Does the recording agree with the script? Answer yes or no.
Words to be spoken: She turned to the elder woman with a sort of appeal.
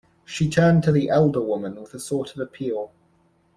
yes